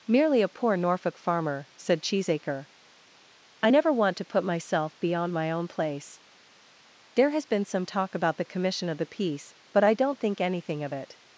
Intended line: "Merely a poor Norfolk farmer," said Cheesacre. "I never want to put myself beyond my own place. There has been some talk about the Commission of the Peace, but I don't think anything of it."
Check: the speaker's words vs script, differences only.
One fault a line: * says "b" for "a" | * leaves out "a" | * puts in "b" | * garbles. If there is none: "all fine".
all fine